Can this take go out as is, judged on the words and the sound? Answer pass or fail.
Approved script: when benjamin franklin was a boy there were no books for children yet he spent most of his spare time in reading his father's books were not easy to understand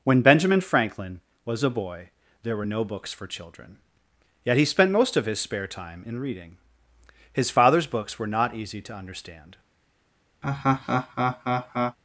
fail